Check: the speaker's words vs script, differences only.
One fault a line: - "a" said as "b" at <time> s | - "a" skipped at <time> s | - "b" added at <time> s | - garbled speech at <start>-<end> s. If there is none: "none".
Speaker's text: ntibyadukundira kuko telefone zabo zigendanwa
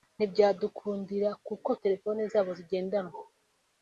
none